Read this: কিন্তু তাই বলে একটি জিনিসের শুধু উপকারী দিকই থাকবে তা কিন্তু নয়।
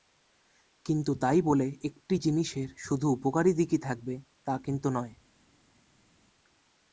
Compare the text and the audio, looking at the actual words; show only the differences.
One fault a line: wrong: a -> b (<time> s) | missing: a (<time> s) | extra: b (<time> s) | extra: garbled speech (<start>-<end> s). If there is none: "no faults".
no faults